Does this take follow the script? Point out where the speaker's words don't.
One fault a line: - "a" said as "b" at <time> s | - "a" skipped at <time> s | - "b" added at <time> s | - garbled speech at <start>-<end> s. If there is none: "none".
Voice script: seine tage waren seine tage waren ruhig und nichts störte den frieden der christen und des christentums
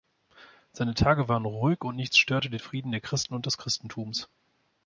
- "seine tage waren" skipped at 1.4 s